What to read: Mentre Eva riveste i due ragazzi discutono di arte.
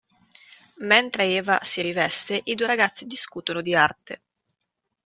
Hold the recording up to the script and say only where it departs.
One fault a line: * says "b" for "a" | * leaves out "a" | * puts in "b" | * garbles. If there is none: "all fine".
* puts in "si"